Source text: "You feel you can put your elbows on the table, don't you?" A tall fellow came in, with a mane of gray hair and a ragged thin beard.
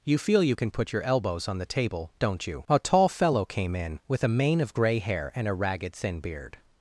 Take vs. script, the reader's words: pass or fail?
pass